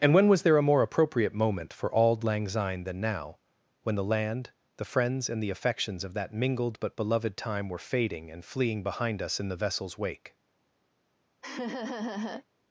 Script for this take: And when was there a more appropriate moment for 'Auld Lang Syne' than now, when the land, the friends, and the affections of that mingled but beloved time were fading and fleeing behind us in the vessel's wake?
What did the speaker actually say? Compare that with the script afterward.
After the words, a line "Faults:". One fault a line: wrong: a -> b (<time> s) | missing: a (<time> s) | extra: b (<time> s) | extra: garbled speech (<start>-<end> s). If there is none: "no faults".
And when was there a more appropriate moment for 'Auld Lang Syne' than now, when the land, the friends, and the affections of that mingled but beloved time were fading and fleeing behind us in the vessel's wake?
Faults:
no faults